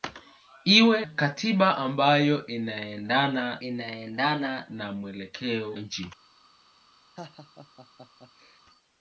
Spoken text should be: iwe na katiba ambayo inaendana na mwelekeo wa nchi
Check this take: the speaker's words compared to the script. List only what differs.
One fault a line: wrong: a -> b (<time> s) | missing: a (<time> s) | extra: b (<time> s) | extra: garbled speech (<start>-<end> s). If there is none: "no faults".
missing: na (1.1 s)
extra: inaendana (3.6 s)
missing: wa (5.7 s)